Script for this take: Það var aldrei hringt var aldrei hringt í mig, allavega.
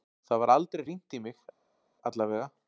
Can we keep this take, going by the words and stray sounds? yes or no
no